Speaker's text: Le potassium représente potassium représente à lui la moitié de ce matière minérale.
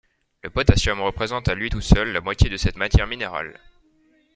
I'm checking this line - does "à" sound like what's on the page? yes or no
no